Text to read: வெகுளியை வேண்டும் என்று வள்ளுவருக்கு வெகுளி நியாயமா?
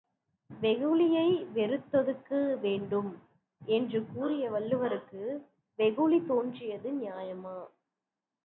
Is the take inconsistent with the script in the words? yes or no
yes